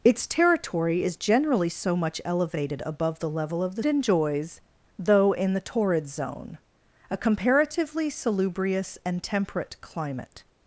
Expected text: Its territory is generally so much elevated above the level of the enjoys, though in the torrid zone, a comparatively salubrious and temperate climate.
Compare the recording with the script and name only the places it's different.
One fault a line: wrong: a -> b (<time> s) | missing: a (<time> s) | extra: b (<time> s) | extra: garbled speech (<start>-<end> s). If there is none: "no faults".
no faults